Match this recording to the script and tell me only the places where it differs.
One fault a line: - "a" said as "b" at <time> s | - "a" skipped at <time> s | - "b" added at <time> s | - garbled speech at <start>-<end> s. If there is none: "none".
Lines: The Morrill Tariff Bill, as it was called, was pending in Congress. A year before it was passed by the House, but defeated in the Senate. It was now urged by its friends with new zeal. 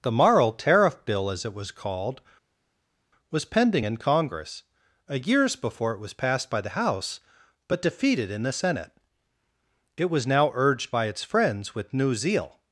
- "year" said as "years" at 5.2 s